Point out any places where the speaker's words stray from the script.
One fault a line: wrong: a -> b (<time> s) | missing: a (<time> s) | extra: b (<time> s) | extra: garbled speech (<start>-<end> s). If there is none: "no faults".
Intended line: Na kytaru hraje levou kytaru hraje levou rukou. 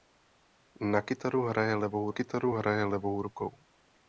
no faults